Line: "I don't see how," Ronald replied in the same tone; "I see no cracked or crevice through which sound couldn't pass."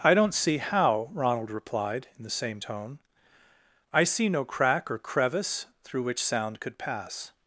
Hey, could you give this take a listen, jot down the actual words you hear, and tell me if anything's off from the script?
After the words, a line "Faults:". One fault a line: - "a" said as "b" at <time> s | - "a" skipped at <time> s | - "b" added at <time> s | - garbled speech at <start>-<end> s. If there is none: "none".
"I don't see how," Ronald replied in the same tone; "I see no crack or crevice through which sound could pass."
Faults:
- "cracked" said as "crack" at 4.4 s
- "couldn't" said as "could" at 6.6 s